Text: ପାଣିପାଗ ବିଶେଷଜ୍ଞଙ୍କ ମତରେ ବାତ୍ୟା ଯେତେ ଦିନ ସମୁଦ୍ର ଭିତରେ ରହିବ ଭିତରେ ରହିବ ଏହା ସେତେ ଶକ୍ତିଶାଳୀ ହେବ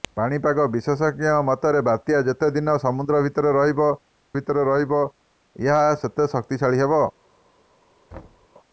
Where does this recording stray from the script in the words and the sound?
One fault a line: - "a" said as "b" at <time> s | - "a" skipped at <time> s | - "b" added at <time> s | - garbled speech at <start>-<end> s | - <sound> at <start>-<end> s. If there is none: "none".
- thud at 8.1-8.5 s